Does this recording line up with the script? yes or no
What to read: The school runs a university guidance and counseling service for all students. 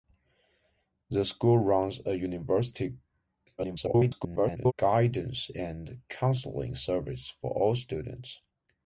no